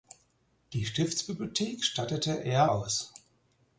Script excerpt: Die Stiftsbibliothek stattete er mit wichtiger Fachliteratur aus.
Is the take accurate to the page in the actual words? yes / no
no